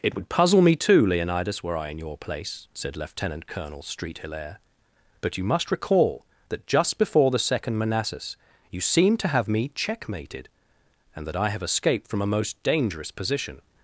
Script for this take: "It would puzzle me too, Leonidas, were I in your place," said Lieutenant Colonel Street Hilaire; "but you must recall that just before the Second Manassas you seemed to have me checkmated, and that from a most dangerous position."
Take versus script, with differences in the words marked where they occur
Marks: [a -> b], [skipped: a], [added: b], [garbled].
"It would puzzle me too, Leonidas, were I in your place," said Lieutenant Colonel Street Hilaire; "but you must recall that just before the Second Manassas you seemed to have me checkmated, and that [added: I have escaped] from a most dangerous position."